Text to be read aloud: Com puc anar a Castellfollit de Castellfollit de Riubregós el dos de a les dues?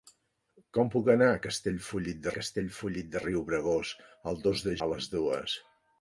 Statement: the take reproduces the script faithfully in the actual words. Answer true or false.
true